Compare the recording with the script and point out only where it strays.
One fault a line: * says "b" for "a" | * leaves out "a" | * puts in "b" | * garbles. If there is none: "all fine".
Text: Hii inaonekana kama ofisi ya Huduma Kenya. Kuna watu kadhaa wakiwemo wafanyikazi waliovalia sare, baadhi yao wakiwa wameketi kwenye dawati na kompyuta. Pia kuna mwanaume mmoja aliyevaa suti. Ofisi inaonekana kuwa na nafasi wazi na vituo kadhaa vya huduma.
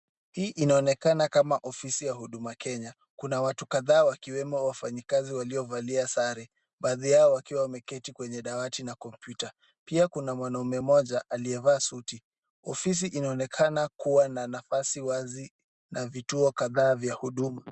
all fine